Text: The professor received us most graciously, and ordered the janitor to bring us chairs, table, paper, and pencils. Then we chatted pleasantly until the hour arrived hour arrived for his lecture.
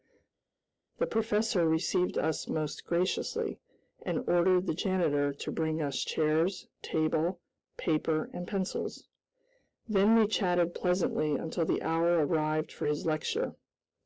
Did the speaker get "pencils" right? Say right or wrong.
right